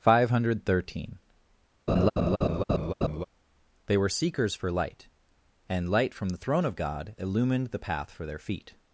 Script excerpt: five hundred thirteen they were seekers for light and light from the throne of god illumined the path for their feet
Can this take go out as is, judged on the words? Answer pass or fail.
pass